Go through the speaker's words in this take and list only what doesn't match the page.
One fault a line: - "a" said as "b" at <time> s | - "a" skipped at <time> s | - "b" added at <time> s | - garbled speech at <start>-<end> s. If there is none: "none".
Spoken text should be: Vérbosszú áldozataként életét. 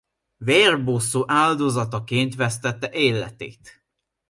- "vesztette" added at 2.4 s